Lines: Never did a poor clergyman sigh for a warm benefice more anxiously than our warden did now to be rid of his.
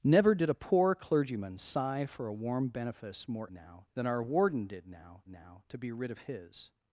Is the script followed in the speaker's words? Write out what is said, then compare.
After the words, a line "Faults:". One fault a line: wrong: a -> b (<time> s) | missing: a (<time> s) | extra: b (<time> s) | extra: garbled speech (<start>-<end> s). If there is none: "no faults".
Never did a poor clergyman sigh for a warm benefice more now than our warden did now now to be rid of his.
Faults:
wrong: anxiously -> now (3.5 s)
extra: now (5.3 s)